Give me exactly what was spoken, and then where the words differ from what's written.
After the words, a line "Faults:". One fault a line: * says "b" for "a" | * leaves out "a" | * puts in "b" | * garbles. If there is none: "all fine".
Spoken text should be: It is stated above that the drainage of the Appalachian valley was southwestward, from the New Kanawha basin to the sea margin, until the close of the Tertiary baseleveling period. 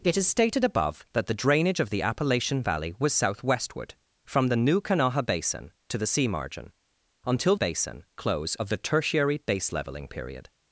It is stated above that the drainage of the Appalachian valley was southwestward, from the New Kanawha basin to the sea margin, until basin close of the Tertiary baseleveling period.
Faults:
* says "basin" for "the"